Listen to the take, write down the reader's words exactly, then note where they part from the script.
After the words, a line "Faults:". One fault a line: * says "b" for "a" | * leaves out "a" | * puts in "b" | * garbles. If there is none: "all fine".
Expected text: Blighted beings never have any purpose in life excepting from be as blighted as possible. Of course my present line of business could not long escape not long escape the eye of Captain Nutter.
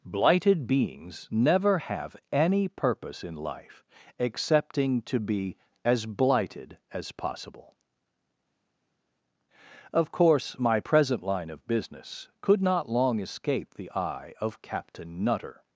Blighted beings never have any purpose in life excepting to be as blighted as possible. Of course my present line of business could not long escape the eye of Captain Nutter.
Faults:
* says "to" for "from"
* leaves out "not long escape"